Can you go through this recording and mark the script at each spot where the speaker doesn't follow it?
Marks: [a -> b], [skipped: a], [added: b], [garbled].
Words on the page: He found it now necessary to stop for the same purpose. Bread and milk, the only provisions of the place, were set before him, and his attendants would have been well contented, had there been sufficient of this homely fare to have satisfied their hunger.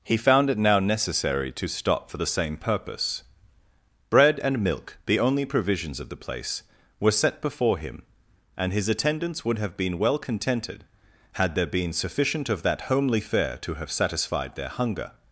He found it now necessary to stop for the same purpose. Bread and milk, the only provisions of the place, were set before him, and his attendants would have been well contented, had there been sufficient of [this -> that] homely fare to have satisfied their hunger.